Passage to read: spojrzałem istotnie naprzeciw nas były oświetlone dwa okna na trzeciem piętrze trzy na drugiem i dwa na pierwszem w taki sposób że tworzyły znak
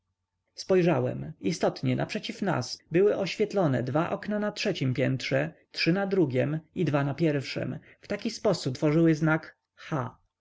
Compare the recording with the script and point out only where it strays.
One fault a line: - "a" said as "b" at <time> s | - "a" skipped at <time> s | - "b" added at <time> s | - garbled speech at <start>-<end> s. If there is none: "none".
- "że" skipped at 8.8 s